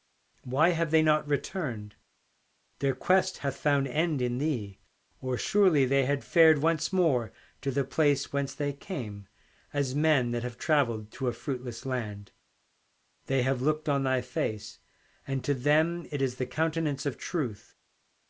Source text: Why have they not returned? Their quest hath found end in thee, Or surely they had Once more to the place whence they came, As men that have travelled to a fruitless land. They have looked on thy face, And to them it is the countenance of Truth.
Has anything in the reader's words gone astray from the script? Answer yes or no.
yes